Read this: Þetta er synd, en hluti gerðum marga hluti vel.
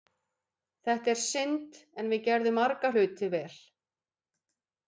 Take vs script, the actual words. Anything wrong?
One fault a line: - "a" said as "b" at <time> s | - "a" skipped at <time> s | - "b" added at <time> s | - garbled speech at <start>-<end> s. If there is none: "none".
- "hluti" said as "við" at 2.1 s